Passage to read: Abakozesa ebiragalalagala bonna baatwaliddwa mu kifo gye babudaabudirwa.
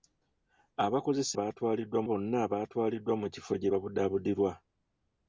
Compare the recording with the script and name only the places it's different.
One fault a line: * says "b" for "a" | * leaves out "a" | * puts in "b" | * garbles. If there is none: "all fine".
* says "baatwaliddwa" for "ebiragalalagala"